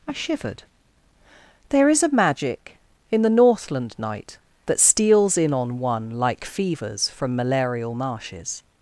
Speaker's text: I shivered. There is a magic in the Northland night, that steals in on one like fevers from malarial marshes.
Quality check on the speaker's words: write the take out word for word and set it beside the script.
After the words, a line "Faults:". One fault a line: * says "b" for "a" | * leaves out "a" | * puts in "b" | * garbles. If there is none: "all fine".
I shivered. There is a magic in the Northland night, that steals in on one like fevers from malarial marshes.
Faults:
all fine